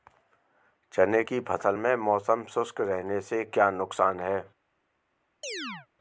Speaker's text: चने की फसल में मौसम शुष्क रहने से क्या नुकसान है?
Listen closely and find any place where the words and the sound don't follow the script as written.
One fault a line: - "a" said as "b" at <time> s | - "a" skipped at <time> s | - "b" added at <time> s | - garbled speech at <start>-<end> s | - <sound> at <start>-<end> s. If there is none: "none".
- chirp at 5.4-5.9 s